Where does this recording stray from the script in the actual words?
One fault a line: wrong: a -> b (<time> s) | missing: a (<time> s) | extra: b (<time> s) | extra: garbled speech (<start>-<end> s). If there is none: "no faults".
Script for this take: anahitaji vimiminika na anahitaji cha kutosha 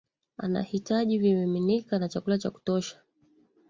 wrong: anahitaji -> chakula (2.1 s)